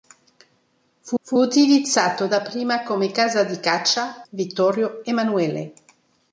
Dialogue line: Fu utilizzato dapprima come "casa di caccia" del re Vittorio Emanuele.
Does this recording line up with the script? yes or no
no